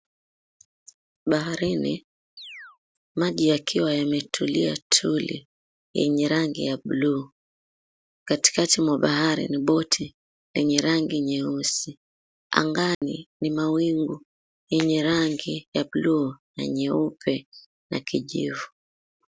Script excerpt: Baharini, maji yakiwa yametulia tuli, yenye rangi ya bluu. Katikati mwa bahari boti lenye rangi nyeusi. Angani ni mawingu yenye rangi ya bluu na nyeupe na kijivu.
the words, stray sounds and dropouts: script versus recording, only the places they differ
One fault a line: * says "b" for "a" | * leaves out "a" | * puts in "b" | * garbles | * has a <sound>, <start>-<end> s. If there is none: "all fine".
* has a chirp, 2.4-2.8 s
* puts in "ni"
* has a dropout, 12.9-13.0 s